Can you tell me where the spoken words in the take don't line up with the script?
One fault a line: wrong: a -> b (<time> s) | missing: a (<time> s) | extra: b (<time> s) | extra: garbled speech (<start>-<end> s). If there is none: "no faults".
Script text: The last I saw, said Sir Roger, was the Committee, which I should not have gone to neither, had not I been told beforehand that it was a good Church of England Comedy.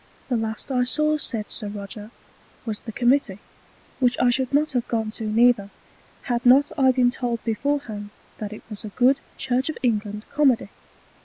no faults